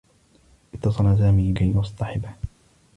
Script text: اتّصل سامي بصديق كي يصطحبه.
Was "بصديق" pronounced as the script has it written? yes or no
no